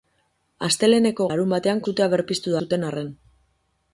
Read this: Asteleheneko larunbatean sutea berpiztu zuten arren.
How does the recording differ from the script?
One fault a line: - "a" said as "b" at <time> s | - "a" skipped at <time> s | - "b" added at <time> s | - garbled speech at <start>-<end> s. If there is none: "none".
none